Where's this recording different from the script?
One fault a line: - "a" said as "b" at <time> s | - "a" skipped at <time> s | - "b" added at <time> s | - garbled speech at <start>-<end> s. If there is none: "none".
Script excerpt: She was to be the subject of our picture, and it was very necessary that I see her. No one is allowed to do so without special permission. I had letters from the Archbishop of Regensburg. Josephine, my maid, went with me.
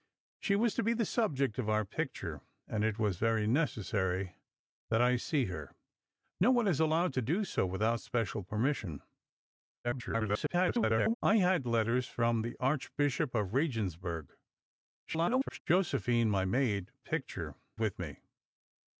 - garbled speech at 9.8-11.1 s
- garbled speech at 15.0-15.6 s
- "went" said as "picture" at 17.0 s